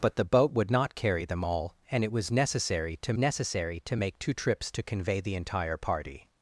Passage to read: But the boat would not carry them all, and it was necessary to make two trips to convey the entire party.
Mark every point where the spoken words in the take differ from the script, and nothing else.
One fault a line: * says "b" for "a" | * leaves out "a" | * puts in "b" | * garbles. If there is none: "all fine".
* puts in "necessary to"